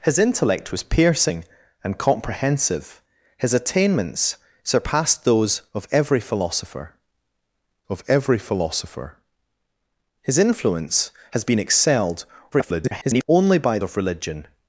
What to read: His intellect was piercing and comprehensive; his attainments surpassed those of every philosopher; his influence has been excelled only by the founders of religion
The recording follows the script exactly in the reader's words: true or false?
false